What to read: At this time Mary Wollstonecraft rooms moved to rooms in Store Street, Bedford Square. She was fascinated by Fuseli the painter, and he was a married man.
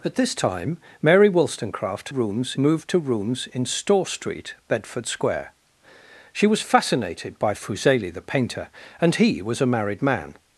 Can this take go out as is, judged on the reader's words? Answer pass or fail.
pass